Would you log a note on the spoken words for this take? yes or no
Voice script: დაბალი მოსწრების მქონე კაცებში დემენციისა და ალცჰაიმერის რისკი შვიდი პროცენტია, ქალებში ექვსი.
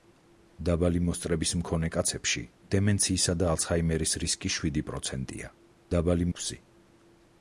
yes